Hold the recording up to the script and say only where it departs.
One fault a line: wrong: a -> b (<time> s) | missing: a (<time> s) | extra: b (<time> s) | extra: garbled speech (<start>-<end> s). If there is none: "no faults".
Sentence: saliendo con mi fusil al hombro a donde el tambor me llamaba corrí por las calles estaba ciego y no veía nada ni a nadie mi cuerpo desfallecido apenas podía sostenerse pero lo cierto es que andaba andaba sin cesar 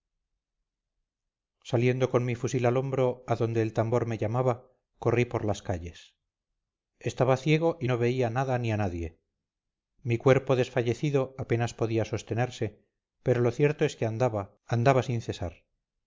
no faults